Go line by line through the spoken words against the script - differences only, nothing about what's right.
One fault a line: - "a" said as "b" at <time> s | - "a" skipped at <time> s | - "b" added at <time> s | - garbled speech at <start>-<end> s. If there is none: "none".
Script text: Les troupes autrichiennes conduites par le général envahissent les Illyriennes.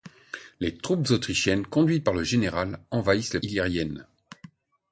none